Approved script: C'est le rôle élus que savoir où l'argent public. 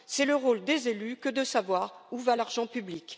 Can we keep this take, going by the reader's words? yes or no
no